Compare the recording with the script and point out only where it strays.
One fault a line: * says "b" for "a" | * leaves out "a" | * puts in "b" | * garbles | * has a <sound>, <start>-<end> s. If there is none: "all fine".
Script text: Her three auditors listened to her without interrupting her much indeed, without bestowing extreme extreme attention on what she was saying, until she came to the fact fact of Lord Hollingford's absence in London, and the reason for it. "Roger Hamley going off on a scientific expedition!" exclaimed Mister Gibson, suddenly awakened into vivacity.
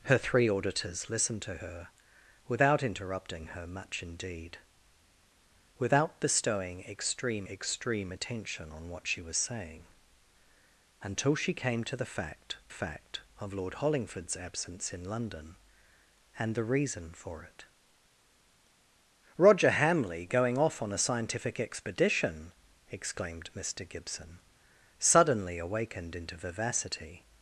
all fine